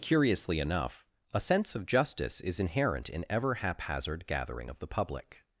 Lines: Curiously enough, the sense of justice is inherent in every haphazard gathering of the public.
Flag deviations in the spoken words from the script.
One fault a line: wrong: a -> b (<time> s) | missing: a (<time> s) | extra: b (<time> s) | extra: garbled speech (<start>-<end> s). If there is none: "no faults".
wrong: the -> a (1.3 s)
wrong: every -> ever (3.3 s)